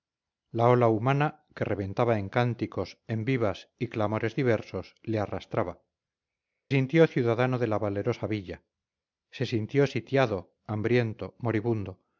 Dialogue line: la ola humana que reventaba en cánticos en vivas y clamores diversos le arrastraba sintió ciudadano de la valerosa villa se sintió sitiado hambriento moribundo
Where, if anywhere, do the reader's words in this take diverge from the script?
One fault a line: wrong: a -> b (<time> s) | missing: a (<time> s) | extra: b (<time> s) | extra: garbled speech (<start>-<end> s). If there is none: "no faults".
no faults